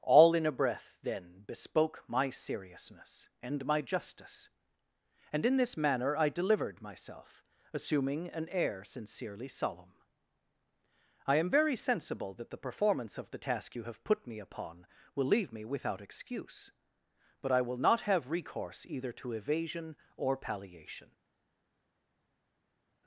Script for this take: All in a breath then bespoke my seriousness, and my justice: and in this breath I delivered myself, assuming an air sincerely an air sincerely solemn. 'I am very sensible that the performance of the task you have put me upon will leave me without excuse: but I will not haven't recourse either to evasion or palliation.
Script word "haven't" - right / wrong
wrong